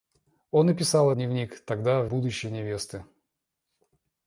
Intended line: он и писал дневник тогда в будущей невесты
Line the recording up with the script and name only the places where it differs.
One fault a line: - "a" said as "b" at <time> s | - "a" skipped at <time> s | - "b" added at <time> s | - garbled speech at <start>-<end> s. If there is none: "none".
none